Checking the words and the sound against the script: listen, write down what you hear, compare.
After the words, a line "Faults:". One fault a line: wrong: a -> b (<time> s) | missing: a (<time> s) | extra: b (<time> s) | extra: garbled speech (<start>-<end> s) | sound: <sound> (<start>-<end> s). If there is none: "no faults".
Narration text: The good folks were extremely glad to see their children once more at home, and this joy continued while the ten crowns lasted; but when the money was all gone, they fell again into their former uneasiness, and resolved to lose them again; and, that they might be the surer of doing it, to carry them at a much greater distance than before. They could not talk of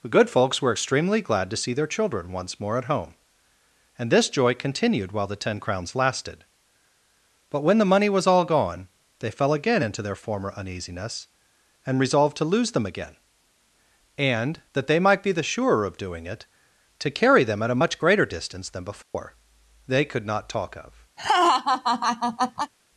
The good folks were extremely glad to see their children once more at home, and this joy continued while the ten crowns lasted; but when the money was all gone, they fell again into their former uneasiness, and resolved to lose them again; and, that they might be the surer of doing it, to carry them at a much greater distance than before. They could not talk of
Faults:
sound: dropout (19.0-19.1 s)
sound: laugh (21.2-22.7 s)